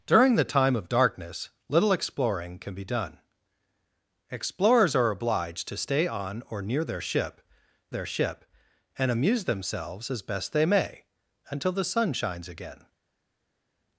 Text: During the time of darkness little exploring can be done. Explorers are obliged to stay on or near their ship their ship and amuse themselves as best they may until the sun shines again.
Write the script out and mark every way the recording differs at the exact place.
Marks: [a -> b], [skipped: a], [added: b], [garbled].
During the time of darkness little exploring can be done. Explorers are obliged to stay on or near their ship their ship and amuse themselves as best they may until the sun shines again.